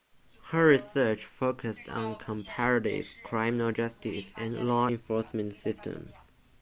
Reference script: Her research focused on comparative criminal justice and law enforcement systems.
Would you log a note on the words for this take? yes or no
no